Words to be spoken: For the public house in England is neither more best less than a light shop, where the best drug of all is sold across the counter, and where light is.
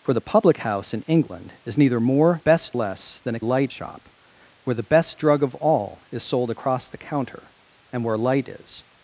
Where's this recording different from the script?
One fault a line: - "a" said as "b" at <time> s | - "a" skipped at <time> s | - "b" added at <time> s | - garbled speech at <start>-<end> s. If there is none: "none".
none